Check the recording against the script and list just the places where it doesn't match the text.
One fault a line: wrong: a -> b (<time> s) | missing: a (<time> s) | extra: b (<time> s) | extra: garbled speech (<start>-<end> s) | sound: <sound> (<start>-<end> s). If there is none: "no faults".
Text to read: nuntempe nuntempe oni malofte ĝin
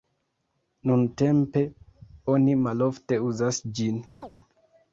missing: nuntempe (1.6 s)
extra: uzas (3.3 s)
sound: chirp (4.2-4.3 s)